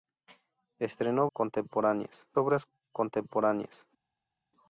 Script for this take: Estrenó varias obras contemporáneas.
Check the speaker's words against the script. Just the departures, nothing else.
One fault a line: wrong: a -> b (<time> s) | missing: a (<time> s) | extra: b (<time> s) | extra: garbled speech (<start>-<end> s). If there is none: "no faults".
wrong: varias -> contemporáneas (1.3 s)